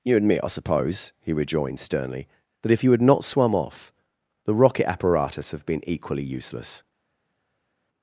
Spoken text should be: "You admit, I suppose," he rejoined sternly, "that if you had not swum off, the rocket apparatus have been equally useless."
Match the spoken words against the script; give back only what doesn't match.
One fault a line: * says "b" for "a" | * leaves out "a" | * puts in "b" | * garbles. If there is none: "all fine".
all fine